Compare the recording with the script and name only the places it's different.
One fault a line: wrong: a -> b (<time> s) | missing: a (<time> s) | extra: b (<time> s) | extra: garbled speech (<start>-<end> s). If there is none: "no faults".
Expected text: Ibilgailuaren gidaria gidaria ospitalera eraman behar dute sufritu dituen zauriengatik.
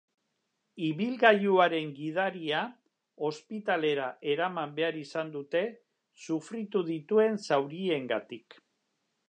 missing: gidaria (2.6 s)
extra: izan (5.0 s)